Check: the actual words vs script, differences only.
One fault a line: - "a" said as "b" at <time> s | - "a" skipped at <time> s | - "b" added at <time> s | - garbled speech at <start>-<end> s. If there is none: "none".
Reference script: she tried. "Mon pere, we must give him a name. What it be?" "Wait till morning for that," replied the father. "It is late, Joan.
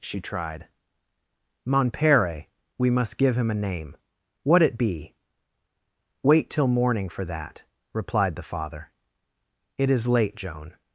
none